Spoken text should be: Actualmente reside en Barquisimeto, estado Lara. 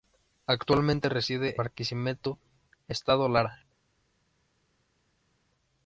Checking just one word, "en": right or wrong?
wrong